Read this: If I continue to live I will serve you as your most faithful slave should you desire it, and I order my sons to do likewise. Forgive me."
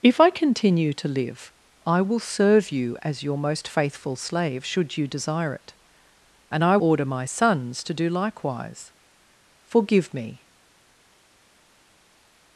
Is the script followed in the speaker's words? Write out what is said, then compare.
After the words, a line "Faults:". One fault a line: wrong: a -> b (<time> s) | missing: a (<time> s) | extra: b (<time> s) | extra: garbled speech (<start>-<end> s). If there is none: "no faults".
If I continue to live I will serve you as your most faithful slave should you desire it, and I order my sons to do likewise. Forgive me."
Faults:
no faults